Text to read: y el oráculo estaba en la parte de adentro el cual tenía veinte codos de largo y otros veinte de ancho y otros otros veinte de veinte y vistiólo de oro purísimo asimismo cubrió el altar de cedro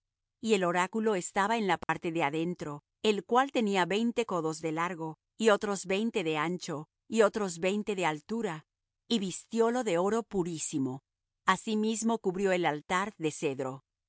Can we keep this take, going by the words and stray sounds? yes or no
no